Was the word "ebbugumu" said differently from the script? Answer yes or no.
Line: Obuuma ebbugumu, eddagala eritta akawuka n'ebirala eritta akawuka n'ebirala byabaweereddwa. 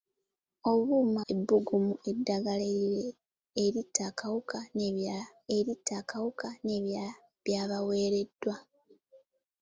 no